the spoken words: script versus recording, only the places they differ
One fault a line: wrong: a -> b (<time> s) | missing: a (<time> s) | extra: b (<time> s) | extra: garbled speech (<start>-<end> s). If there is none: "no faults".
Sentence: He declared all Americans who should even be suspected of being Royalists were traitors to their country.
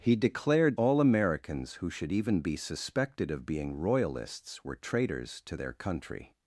no faults